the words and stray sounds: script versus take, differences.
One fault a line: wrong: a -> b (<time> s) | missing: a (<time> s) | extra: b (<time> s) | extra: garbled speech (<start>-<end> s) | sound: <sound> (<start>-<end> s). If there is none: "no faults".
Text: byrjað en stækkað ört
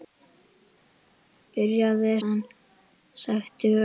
no faults